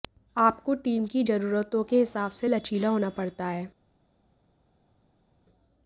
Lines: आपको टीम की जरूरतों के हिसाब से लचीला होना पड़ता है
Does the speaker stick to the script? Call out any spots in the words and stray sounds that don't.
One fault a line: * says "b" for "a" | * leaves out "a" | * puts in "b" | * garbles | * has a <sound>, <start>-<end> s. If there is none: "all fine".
all fine